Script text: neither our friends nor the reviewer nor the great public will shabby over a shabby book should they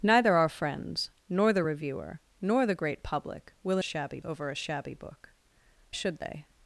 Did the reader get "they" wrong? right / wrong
right